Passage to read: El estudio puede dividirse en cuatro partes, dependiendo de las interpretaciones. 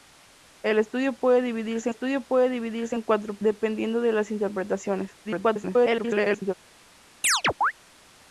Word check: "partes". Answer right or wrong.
wrong